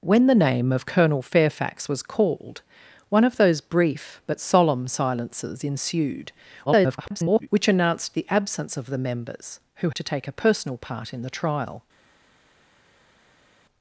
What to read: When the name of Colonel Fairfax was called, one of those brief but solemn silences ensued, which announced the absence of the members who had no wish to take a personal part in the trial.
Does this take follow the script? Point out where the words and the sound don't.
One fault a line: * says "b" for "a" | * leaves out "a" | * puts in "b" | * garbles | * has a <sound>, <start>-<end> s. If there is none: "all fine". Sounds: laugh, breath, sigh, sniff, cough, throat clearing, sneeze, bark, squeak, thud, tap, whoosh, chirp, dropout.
* garbles
* leaves out "had no wish"